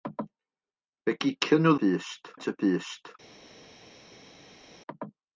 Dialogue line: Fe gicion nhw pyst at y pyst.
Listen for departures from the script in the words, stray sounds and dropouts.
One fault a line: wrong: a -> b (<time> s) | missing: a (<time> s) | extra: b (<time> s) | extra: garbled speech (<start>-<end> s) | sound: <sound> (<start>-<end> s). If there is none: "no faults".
no faults